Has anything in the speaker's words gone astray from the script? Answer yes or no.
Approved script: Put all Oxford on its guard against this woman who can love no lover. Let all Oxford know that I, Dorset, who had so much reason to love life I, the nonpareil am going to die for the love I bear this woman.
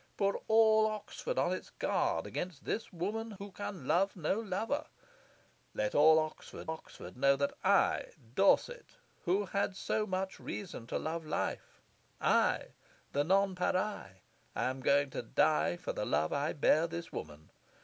yes